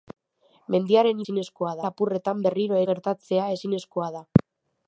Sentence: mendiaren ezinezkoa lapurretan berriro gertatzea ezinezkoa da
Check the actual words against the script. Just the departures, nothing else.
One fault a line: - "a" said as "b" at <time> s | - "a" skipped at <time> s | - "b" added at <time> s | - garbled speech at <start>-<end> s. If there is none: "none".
none